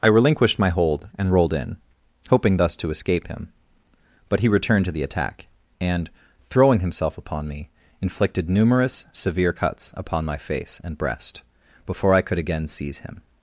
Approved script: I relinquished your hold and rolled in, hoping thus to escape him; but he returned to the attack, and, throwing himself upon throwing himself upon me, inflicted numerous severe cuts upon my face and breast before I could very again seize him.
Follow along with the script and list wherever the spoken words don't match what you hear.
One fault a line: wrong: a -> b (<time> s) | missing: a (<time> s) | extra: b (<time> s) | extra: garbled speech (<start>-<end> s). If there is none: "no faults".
wrong: your -> my (0.6 s)
missing: throwing himself upon (7.5 s)
missing: very (12.4 s)